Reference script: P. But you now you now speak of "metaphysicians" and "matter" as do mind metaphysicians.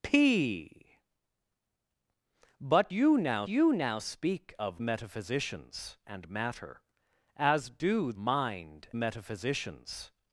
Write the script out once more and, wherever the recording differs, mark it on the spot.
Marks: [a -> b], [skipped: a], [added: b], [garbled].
P. But you now you now speak of "metaphysicians" and "matter" as do mind metaphysicians.